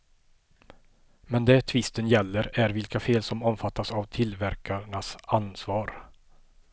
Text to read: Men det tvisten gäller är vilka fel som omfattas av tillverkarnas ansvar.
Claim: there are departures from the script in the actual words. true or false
false